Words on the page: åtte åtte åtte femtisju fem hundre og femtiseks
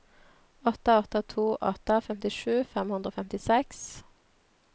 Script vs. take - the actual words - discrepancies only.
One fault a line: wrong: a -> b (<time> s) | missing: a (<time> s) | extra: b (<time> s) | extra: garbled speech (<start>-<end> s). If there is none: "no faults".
extra: to (1.3 s)